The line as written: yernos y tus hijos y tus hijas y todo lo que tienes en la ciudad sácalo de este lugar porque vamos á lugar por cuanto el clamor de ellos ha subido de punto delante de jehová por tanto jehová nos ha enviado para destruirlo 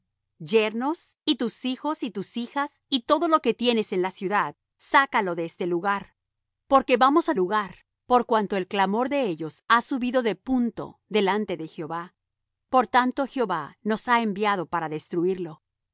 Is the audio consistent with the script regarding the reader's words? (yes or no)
yes